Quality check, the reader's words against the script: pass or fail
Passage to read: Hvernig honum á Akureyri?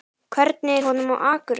pass